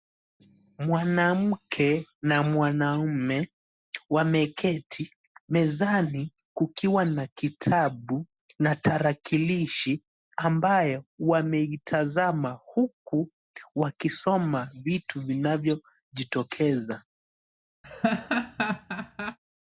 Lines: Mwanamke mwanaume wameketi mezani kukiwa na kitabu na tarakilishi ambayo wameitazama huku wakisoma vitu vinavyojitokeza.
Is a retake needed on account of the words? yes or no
yes